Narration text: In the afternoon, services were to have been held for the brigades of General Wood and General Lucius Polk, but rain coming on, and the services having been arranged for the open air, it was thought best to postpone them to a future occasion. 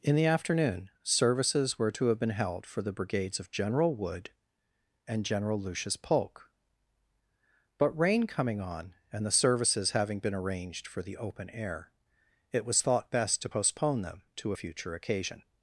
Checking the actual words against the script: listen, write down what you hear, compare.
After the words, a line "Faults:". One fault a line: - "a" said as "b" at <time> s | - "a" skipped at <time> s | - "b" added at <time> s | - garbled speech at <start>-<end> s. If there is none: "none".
In the afternoon, services were to have been held for the brigades of General Wood and General Lucius Polk, but rain coming on, and the services having been arranged for the open air, it was thought best to postpone them to a future occasion.
Faults:
none